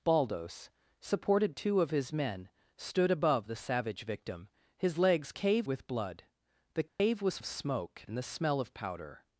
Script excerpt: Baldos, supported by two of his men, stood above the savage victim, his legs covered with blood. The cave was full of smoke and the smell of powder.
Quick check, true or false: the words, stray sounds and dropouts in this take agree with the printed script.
false